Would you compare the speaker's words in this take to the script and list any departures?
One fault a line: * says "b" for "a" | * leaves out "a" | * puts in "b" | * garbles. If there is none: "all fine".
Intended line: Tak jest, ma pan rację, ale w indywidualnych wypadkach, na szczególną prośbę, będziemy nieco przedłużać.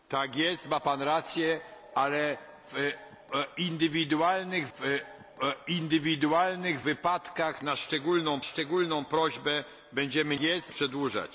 * puts in "w indywidualnych"
* puts in "szczególną"
* says "jest" for "nieco"